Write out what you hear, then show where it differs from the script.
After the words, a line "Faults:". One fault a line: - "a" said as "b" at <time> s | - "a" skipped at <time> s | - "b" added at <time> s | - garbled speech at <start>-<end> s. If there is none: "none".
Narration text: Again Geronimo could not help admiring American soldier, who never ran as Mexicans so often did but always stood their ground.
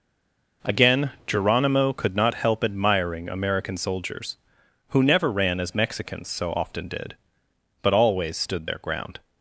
Again Geronimo could not help admiring American soldiers, who never ran as Mexicans so often did but always stood their ground.
Faults:
- "soldier" said as "soldiers" at 3.8 s